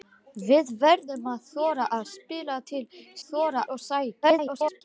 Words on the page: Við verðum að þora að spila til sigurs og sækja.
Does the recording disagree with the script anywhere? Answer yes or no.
yes